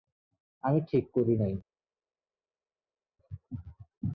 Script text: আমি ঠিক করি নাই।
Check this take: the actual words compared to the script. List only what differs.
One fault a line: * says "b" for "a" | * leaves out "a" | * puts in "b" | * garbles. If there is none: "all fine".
all fine